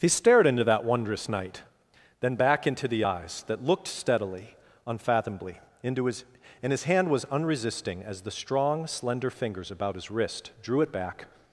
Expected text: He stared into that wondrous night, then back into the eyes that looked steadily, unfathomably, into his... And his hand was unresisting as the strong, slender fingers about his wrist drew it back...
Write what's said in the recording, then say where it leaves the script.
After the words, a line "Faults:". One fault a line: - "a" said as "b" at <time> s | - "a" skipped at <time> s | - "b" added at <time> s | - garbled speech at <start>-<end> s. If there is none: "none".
He stared into that wondrous night, then back into the eyes that looked steadily, unfathomably, into his... And his hand was unresisting as the strong, slender fingers about his wrist drew it back...
Faults:
none